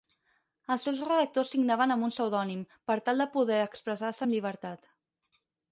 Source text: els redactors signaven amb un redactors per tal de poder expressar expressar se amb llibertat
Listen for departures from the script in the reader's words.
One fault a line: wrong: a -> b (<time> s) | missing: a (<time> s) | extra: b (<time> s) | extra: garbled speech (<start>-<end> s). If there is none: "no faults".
extra: seus (0.9 s)
wrong: redactors -> pseudònim (2.1 s)
missing: expressar (4.2 s)